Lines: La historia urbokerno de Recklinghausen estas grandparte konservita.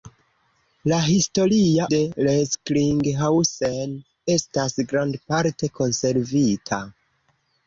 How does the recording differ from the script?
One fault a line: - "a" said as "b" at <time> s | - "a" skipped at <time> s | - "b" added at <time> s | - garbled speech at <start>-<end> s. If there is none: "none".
- "urbokerno" skipped at 1.9 s